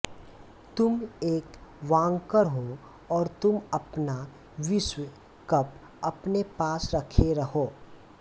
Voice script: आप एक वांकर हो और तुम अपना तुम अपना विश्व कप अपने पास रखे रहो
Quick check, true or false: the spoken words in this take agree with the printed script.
false